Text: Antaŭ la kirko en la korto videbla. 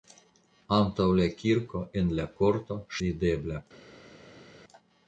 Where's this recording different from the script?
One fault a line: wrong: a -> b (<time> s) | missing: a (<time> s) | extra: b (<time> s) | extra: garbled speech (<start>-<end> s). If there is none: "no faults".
no faults